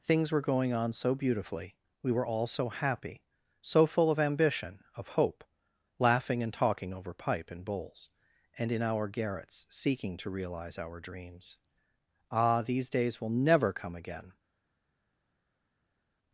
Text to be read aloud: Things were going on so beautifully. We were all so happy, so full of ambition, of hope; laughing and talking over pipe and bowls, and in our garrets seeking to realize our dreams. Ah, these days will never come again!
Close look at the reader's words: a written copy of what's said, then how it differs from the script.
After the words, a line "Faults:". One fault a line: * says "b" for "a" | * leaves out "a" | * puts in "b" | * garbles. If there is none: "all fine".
Things were going on so beautifully. We were all so happy, so full of ambition, of hope; laughing and talking over pipe and bowls, and in our garrets seeking to realize our dreams. Ah, these days will never come again!
Faults:
all fine